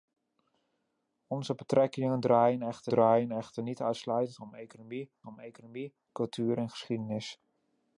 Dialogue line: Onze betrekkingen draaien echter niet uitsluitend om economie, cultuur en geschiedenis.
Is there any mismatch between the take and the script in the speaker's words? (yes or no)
yes